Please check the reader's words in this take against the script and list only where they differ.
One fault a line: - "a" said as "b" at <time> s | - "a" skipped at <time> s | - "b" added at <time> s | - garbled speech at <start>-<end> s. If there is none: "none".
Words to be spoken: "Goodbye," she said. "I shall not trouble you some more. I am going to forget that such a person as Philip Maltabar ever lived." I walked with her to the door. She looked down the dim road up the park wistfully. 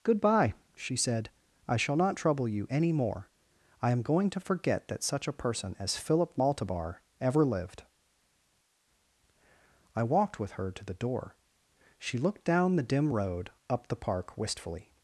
- "some" said as "any" at 2.7 s